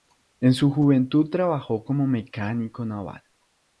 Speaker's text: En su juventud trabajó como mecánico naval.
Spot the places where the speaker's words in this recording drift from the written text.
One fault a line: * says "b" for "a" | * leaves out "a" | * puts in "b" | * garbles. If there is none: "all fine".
all fine